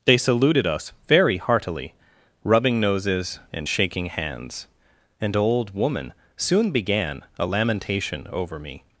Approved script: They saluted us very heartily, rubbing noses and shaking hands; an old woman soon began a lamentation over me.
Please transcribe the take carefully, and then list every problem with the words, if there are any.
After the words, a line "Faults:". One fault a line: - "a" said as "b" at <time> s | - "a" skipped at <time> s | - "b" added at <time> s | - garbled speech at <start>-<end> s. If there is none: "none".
They saluted us very heartily, rubbing noses and shaking hands; an old woman soon began a lamentation over me.
Faults:
none